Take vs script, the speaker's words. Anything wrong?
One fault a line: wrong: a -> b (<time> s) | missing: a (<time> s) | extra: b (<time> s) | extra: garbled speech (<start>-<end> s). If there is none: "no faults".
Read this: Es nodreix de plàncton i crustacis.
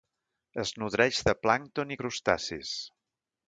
no faults